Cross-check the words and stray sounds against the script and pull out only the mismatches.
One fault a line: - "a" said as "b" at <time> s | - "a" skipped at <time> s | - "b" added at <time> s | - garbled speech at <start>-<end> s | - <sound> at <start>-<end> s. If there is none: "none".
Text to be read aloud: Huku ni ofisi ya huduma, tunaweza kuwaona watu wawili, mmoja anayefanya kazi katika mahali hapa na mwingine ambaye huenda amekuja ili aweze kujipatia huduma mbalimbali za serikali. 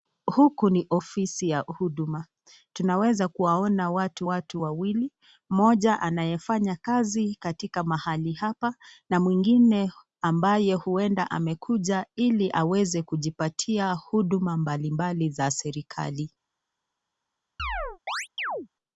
- "watu" added at 4.2 s
- chirp at 17.6-18.7 s